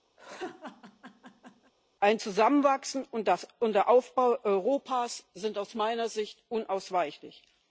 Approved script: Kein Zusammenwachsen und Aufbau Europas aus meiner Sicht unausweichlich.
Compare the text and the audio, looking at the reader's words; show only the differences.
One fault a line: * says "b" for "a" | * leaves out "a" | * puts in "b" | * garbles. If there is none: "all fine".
* says "Ein" for "Kein"
* puts in "der"
* puts in "sind"